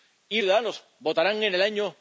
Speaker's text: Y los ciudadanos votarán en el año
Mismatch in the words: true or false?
true